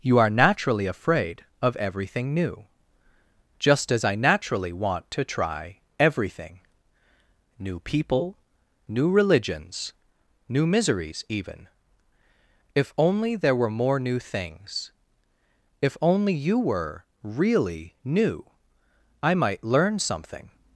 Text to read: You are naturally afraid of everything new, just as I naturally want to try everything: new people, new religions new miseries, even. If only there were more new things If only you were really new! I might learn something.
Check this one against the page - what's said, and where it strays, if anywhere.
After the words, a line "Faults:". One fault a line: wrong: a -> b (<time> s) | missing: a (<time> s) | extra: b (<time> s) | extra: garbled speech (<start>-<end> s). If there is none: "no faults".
You are naturally afraid of everything new, just as I naturally want to try everything: new people, new religions new miseries, even. If only there were more new things If only you were really new! I might learn something.
Faults:
no faults